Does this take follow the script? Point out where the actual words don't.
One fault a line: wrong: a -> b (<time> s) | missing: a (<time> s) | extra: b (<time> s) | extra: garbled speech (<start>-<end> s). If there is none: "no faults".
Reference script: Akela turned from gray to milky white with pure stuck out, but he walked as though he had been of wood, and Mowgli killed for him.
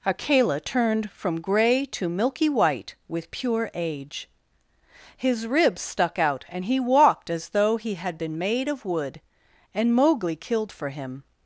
extra: age his ribs (3.8 s)
wrong: but -> and (6.5 s)
extra: made (8.3 s)